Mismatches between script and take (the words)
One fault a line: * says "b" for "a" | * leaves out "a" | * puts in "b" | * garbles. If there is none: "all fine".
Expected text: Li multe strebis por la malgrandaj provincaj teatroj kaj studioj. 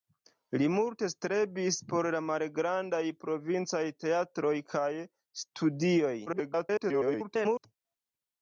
* garbles